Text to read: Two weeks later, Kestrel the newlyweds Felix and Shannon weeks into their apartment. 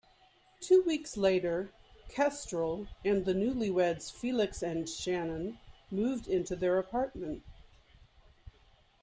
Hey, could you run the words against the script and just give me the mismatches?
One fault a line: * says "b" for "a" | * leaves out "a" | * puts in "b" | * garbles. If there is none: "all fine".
* puts in "and"
* says "moved" for "weeks"